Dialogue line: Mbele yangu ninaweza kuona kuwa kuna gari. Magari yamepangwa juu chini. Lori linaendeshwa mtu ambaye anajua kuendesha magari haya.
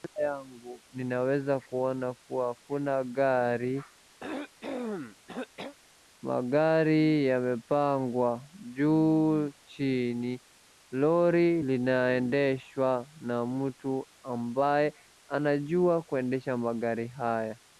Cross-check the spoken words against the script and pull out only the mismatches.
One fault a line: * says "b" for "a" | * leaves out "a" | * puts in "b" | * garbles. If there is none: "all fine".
* puts in "na"